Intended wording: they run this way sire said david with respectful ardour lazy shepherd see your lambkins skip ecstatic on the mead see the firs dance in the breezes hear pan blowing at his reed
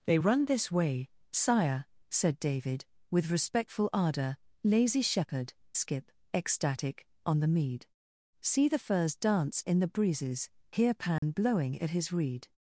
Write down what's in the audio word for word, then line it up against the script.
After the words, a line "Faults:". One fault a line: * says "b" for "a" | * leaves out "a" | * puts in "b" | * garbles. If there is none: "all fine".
they run this way sire said david with respectful ardour lazy shepherd skip ecstatic on the mead see the firs dance in the breezes hear pan blowing at his reed
Faults:
* leaves out "see your lambkins"